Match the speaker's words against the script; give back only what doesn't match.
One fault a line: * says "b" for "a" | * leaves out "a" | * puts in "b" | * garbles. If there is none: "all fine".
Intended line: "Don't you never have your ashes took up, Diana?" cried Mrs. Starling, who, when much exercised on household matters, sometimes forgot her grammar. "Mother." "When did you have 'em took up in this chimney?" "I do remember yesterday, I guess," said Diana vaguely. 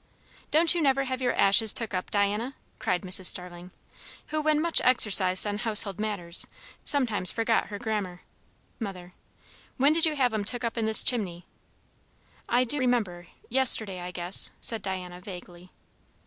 all fine